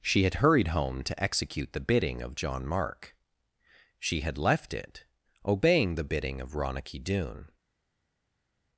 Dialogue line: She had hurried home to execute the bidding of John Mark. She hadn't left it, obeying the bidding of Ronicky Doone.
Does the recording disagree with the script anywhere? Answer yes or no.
yes